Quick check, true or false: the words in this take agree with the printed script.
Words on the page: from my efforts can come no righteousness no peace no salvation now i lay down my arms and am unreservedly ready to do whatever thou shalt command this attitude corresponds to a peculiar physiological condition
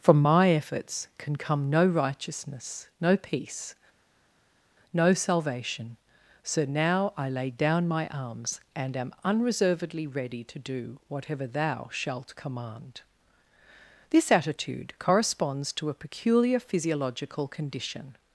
false